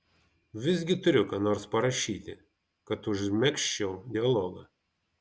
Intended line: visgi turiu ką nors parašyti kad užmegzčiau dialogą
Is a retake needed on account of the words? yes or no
no